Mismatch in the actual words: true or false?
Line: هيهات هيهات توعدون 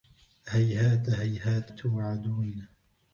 false